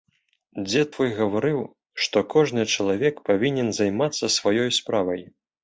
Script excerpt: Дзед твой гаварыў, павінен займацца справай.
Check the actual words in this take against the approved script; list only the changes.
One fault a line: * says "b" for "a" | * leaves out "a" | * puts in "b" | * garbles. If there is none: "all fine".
* puts in "што кожны чалавек"
* puts in "сваёй"